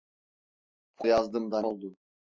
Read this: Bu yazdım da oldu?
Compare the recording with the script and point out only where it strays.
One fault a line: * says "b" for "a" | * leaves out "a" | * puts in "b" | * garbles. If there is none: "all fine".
all fine